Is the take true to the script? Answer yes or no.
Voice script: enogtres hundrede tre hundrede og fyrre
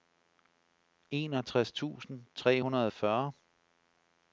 no